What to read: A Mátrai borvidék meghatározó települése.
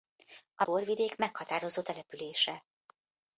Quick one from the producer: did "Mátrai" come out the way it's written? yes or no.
no